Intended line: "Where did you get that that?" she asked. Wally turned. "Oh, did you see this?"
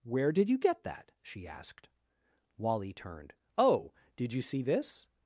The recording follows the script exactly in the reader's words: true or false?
false